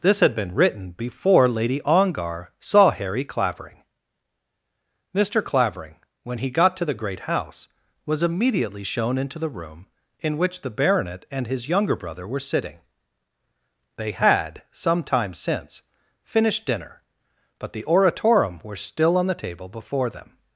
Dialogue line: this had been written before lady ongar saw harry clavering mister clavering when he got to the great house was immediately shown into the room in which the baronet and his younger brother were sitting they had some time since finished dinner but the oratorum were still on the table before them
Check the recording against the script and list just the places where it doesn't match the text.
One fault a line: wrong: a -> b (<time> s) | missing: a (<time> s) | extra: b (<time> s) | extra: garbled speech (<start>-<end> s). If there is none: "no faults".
no faults